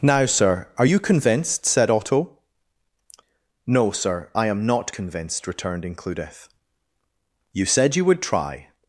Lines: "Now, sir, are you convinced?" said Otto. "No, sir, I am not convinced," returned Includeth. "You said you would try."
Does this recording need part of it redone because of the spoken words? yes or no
no